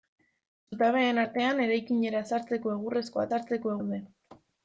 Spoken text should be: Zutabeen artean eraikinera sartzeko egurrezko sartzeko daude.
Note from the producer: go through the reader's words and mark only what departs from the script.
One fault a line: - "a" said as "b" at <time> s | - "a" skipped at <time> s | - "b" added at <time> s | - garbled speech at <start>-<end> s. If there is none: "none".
none